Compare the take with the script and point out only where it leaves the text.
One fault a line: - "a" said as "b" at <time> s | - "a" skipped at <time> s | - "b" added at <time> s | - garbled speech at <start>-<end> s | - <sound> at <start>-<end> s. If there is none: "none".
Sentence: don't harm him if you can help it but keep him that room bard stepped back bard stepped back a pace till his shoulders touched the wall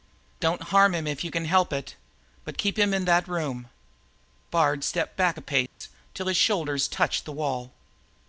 - "in" added at 2.9 s
- "bard stepped back" skipped at 5.4 s
- dropout at 5.7-5.8 s